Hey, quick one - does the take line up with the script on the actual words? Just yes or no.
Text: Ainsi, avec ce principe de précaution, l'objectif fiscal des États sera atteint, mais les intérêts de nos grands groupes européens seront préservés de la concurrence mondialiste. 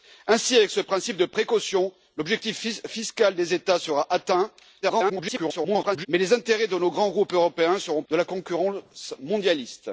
no